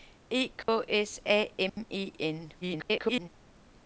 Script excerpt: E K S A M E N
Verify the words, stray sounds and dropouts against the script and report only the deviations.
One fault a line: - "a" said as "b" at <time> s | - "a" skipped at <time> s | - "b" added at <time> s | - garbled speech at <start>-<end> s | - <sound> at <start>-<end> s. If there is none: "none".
- dropout at 0.6-0.7 s
- dropout at 1.7-1.8 s
- garbled speech at 2.6-3.3 s